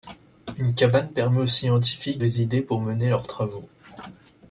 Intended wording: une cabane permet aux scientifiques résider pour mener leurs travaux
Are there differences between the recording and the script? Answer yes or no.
no